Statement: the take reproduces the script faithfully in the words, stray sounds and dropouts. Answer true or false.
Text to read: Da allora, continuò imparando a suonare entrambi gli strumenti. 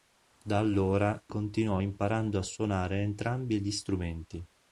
true